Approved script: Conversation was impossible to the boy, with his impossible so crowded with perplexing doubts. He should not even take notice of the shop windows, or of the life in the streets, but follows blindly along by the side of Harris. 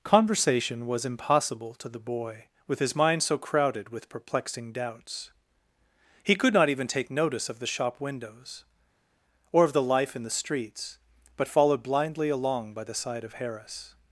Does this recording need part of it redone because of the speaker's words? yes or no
yes